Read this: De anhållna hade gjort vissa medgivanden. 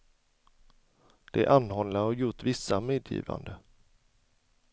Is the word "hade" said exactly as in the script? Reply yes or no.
no